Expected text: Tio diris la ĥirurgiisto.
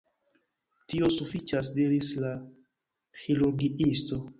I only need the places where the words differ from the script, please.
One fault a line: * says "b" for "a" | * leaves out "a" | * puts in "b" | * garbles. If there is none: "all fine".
* puts in "sufiĉas"